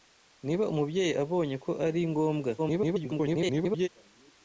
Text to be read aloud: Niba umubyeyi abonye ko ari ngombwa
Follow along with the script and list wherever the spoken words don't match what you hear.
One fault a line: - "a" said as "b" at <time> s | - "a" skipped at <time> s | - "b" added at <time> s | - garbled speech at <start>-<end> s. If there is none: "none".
- garbled speech at 2.6-3.9 s